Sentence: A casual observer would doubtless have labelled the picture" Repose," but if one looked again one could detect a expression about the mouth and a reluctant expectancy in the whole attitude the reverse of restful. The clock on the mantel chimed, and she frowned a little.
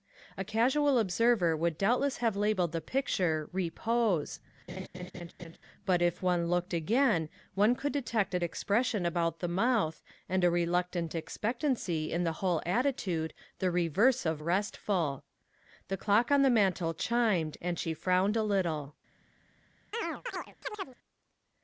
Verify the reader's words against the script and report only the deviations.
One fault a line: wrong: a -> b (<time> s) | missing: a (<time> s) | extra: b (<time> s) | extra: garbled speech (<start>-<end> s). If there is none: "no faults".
no faults